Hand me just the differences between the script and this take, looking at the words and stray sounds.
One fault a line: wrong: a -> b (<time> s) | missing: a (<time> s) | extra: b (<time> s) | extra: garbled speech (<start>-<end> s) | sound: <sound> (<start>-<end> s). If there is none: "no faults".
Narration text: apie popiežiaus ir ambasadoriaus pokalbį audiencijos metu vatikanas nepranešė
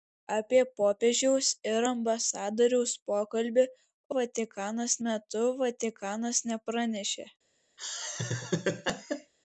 wrong: audiencijos -> vatikanas (4.2 s)
sound: laugh (7.8-9.3 s)